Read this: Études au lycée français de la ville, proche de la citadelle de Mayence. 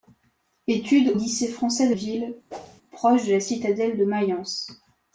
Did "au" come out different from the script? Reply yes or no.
yes